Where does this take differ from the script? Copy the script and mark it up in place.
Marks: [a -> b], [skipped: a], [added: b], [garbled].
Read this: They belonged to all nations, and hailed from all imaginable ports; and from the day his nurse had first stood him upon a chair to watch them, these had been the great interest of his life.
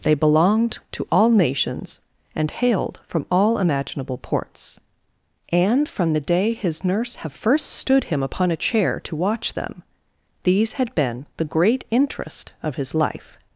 They belonged to all nations, and hailed from all imaginable ports; and from the day his nurse [had -> have] first stood him upon a chair to watch them, these had been the great interest of his life.